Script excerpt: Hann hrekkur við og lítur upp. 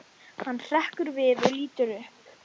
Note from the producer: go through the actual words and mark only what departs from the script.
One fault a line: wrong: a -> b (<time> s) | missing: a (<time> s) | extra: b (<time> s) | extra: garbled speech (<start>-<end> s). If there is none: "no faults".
no faults